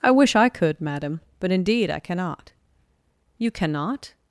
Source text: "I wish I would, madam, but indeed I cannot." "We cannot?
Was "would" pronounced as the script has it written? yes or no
no